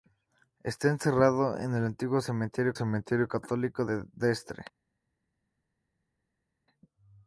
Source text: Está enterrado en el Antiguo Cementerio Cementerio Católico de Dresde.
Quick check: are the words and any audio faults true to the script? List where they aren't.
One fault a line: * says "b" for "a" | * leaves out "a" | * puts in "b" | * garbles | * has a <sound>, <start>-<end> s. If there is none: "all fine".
all fine